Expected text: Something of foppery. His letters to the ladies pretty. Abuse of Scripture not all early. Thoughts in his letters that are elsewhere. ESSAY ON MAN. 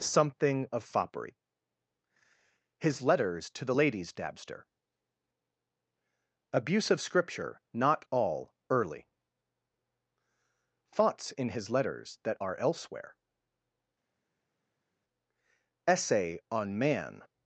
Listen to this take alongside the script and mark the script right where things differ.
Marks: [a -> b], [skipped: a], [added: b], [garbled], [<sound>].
Something of foppery. His letters to the ladies [pretty. -> dabster] Abuse of Scripture not all early. Thoughts in his letters that are elsewhere. ESSAY ON MAN.